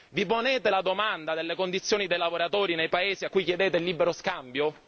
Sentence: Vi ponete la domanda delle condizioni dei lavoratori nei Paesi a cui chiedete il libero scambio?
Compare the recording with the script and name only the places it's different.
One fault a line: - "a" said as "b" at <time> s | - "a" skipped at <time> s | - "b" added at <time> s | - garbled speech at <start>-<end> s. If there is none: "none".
none